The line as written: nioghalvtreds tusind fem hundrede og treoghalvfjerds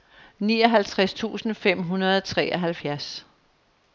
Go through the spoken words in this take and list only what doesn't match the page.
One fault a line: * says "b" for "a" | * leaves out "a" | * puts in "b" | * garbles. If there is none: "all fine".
all fine